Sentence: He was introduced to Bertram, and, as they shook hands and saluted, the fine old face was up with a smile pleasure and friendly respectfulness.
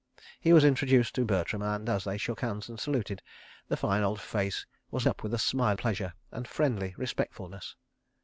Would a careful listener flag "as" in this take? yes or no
no